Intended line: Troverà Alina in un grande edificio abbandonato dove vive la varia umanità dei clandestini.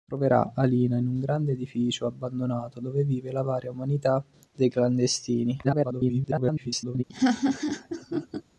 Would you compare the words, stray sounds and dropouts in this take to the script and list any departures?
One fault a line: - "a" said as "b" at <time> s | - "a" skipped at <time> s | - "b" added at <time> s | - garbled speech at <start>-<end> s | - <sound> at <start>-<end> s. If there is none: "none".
- garbled speech at 5.6-7.0 s
- laugh at 7.1-8.4 s